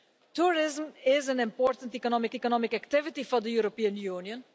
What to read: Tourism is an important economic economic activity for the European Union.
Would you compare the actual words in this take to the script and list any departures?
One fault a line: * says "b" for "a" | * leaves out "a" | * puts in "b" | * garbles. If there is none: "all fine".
all fine